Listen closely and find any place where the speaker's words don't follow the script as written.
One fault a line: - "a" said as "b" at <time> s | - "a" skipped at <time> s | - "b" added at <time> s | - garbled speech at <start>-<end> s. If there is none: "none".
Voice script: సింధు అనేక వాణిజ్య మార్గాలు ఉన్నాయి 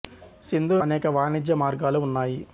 none